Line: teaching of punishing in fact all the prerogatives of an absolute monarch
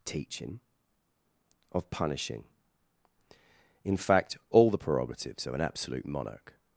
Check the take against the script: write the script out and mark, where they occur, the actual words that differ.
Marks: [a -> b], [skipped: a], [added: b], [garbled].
teaching of punishing in fact all the prerogatives of an absolute monarch